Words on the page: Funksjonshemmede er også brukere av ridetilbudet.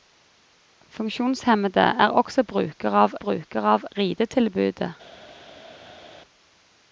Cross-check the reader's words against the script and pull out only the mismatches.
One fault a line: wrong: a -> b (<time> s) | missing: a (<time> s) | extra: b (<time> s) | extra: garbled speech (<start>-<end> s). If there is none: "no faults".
extra: brukere av (3.2 s)